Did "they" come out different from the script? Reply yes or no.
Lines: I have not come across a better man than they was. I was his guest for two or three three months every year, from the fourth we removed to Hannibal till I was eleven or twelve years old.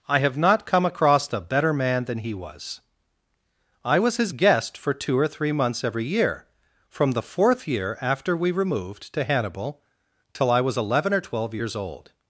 yes